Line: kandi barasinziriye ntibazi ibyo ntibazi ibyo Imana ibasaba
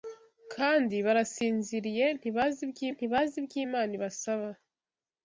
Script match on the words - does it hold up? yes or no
yes